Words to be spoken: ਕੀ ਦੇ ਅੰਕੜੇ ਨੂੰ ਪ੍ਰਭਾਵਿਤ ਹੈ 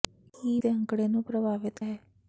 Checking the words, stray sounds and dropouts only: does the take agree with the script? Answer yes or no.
yes